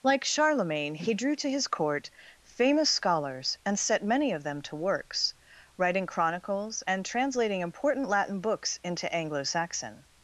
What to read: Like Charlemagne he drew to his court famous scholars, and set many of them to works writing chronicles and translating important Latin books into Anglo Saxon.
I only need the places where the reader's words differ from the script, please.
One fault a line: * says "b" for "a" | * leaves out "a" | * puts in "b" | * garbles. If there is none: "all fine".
all fine